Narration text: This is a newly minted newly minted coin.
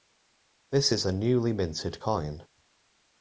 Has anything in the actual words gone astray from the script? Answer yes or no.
yes